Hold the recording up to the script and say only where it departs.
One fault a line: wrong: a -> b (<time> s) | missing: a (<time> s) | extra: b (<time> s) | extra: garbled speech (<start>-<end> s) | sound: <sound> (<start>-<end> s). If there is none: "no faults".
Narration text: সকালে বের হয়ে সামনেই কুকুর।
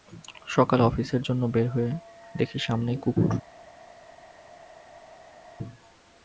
extra: অফিসের জন্য (0.8 s)
extra: দেখি (2.4 s)